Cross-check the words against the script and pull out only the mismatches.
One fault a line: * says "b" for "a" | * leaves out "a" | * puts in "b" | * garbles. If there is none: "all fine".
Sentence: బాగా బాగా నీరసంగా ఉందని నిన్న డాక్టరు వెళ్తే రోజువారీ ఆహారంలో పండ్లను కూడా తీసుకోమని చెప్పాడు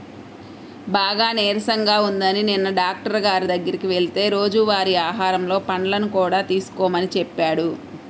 * leaves out "బాగా"
* puts in "గారి దగ్గరికి"